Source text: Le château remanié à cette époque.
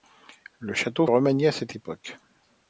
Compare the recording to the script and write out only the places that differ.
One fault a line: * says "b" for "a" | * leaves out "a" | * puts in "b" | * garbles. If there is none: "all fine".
all fine